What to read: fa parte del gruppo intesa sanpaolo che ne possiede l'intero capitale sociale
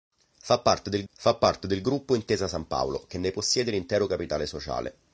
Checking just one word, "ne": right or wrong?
right